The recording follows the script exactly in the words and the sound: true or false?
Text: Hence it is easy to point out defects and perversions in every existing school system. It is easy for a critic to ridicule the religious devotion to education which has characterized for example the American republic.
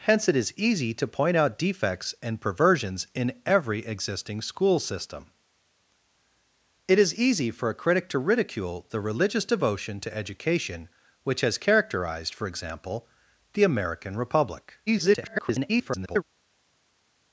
false